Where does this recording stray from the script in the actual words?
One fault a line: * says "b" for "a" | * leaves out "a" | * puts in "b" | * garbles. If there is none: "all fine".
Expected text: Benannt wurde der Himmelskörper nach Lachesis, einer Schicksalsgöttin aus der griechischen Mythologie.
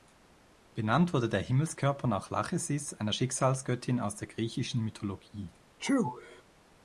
all fine